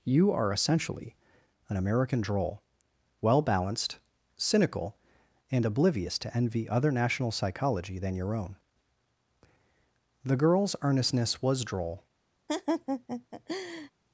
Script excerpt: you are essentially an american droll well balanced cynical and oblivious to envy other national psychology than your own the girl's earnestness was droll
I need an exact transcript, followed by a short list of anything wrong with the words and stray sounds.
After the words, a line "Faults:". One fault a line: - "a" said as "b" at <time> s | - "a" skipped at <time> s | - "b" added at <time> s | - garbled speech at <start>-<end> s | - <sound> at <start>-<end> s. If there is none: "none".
you are essentially an american droll well balanced cynical and oblivious to envy other national psychology than your own the girl's earnestness was droll
Faults:
- laugh at 12.5-13.9 s